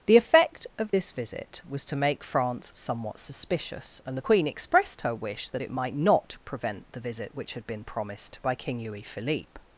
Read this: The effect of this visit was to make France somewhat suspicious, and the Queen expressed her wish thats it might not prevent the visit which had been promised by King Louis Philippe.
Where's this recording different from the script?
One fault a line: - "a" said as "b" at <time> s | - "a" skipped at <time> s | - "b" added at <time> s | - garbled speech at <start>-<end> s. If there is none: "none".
- "thats" said as "that" at 5.5 s